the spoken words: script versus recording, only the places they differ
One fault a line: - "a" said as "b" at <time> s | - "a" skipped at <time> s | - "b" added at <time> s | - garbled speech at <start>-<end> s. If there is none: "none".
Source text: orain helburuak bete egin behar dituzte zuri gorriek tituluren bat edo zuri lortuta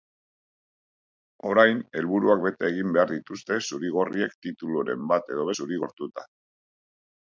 none